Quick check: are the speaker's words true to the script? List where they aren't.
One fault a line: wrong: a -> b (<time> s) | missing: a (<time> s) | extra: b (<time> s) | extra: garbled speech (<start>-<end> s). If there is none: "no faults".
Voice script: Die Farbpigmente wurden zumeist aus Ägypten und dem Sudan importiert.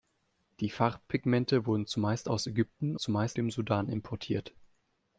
wrong: und -> zumeist (3.0 s)